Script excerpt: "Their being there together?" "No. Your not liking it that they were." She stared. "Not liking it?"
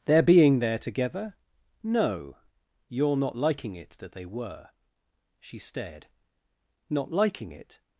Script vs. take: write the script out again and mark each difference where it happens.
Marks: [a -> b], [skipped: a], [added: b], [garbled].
"Their being there together?" "No. Your not liking it that they were." She stared. "Not liking it?"